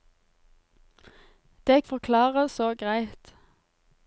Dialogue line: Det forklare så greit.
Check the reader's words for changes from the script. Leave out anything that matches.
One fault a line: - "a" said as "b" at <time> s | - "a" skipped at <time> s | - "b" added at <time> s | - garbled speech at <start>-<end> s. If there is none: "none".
none